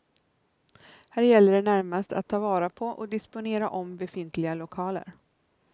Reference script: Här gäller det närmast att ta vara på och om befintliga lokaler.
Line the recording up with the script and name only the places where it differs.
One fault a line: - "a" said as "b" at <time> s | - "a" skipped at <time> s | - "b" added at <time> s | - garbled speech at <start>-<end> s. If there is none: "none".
- "disponera" added at 3.1 s